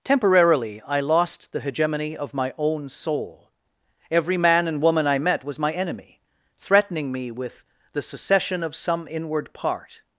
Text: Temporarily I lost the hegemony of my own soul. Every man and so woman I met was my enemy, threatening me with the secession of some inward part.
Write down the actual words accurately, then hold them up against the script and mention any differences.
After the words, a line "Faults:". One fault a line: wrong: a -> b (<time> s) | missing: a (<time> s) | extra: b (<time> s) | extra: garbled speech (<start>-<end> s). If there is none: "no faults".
Temporarily I lost the hegemony of my own soul. Every man and woman I met was my enemy, threatening me with the secession of some inward part.
Faults:
missing: so (4.8 s)